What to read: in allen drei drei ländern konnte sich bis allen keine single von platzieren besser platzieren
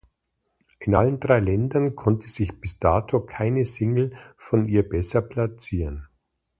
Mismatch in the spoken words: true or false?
true